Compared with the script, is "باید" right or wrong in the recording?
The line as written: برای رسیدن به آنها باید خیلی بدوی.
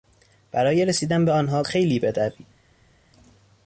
wrong